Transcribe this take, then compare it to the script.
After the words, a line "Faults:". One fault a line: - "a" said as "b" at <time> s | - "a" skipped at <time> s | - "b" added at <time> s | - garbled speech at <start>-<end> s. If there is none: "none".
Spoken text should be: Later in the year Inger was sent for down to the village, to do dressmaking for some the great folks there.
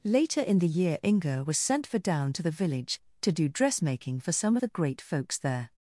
Later in the year Inger was sent for down to the village, to do dressmaking for some the great folks there.
Faults:
none